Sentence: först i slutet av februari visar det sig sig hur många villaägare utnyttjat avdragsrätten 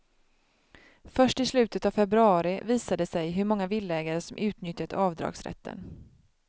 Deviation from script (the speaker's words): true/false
true